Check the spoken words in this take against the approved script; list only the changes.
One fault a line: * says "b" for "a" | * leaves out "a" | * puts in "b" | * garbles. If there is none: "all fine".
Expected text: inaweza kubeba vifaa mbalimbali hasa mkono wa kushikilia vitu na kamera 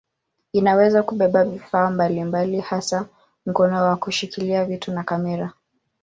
all fine